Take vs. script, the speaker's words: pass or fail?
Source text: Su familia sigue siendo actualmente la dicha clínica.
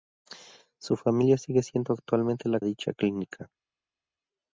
pass